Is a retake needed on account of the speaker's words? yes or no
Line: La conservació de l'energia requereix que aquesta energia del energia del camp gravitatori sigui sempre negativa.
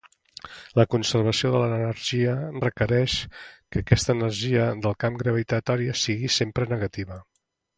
yes